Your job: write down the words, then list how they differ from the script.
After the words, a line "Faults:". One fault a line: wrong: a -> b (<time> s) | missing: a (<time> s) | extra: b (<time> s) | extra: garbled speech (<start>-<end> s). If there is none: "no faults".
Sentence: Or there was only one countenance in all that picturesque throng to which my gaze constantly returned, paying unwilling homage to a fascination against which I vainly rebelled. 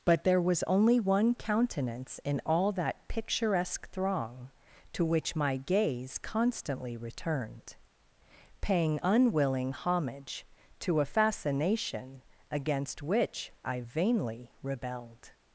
But there was only one countenance in all that picturesque throng to which my gaze constantly returned, paying unwilling homage to a fascination against which I vainly rebelled.
Faults:
wrong: Or -> But (0.0 s)